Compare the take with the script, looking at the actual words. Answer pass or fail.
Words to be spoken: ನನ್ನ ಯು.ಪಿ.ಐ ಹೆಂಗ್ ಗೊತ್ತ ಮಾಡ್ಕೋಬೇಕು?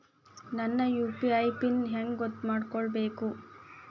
fail